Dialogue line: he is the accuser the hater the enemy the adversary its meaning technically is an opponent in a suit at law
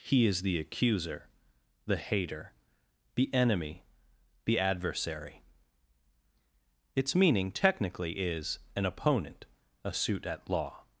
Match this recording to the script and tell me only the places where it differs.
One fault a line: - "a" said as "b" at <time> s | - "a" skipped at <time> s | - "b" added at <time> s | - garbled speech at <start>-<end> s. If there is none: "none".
- "in" skipped at 9.4 s